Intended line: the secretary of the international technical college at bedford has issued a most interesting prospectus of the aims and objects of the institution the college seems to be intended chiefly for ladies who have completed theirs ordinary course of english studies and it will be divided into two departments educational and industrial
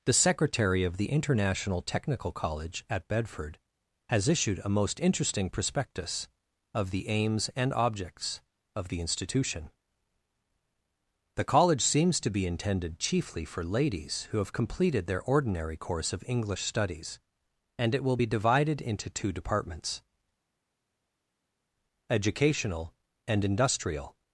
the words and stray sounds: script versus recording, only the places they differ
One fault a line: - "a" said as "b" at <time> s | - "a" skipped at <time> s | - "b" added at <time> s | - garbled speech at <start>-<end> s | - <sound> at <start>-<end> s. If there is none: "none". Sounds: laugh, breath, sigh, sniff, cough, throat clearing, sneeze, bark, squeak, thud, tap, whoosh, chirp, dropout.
- "theirs" said as "their" at 15.1 s